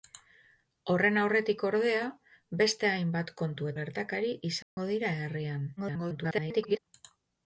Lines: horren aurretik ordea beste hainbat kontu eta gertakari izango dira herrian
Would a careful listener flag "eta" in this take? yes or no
yes